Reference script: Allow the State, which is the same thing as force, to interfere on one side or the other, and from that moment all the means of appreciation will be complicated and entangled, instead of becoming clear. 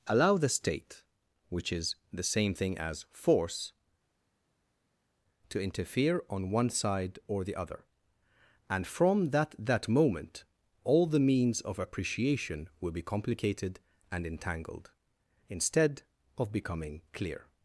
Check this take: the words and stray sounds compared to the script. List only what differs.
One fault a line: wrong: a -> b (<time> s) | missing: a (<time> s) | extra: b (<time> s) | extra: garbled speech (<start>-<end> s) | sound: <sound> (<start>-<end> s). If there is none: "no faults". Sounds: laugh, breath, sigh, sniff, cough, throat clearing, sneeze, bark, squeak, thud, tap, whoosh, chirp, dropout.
extra: that (9.6 s)